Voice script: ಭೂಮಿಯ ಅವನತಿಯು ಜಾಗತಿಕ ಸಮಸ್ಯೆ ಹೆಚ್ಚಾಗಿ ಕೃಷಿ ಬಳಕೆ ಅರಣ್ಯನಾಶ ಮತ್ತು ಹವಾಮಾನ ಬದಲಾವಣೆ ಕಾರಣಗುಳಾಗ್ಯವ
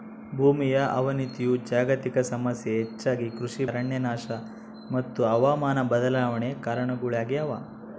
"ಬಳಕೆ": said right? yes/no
no